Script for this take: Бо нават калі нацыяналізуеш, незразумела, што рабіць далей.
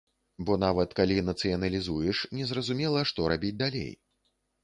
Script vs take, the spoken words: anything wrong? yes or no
no